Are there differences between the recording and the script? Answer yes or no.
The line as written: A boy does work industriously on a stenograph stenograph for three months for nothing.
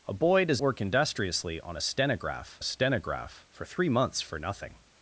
no